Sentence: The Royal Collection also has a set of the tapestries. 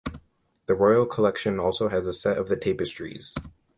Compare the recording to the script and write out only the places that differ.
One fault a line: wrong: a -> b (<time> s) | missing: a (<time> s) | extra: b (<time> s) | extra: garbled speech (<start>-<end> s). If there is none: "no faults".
no faults